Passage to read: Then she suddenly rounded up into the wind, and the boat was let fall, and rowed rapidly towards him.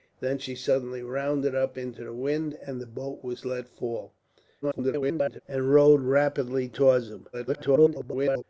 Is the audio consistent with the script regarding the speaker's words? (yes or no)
no